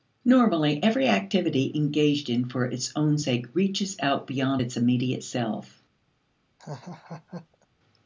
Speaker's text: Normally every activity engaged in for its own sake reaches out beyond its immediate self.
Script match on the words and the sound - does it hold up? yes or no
no